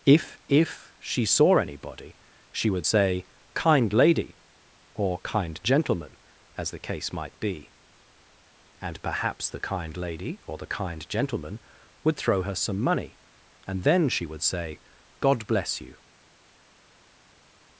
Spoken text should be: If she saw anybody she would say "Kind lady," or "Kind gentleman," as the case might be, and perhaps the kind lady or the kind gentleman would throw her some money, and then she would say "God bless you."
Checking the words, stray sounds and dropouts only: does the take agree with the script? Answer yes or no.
no